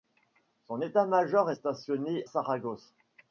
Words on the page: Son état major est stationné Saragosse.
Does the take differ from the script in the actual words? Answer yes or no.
no